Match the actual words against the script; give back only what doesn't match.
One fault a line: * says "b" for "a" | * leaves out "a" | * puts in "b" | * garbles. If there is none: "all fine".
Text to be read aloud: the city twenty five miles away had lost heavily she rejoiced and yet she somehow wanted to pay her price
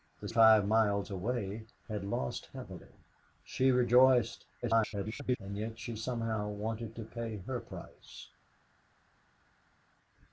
* leaves out "city twenty"
* garbles